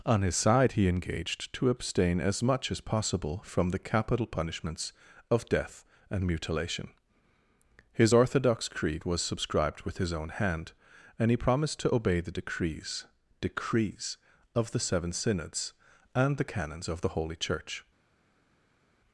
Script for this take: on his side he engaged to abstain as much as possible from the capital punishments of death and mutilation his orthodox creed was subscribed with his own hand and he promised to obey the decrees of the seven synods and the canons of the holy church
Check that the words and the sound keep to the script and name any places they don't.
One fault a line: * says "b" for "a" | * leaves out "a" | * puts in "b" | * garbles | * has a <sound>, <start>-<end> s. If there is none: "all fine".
* puts in "decrees"